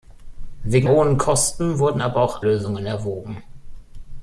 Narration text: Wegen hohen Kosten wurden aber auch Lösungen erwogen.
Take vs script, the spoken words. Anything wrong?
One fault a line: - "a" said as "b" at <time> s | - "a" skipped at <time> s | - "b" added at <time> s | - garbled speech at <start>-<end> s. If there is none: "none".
none